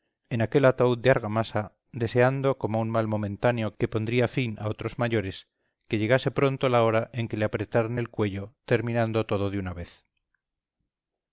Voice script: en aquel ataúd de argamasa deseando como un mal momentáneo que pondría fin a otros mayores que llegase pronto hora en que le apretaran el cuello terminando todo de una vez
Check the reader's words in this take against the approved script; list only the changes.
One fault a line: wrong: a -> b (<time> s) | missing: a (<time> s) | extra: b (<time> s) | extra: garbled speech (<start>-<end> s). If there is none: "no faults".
extra: la (6.7 s)